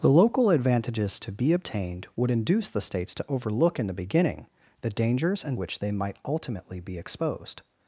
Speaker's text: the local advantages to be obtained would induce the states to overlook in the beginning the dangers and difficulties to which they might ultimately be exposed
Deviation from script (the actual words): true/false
true